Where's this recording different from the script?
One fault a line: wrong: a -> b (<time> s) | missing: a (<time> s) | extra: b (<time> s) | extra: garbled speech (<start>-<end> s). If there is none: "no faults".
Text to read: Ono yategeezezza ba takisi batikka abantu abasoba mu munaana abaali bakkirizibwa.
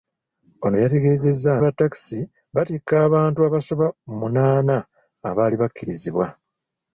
no faults